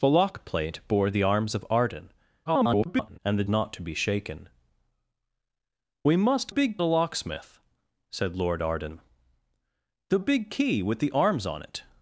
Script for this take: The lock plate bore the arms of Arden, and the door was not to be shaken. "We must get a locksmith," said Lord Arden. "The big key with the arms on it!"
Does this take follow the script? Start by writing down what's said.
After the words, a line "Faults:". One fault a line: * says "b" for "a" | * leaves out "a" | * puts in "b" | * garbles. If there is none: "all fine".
The lock plate bore the arms of Arden, [garbled] and the not to be shaken. "We must big a locksmith," said Lord Arden. "The big key with the arms on it!"
Faults:
* garbles
* leaves out "door was"
* says "big" for "get"